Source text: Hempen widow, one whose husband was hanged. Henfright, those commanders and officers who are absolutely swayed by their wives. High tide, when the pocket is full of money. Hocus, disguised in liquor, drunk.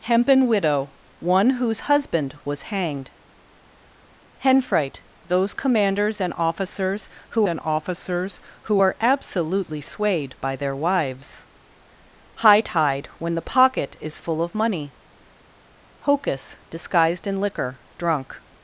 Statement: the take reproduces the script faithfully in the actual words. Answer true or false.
false